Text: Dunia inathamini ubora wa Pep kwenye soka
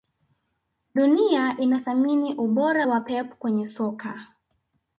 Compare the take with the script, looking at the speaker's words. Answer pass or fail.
pass